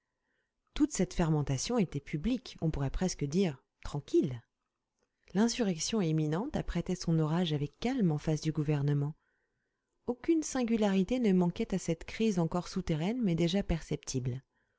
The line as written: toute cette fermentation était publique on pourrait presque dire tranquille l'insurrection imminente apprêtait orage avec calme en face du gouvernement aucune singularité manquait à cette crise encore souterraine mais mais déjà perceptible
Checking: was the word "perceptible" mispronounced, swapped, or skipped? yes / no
no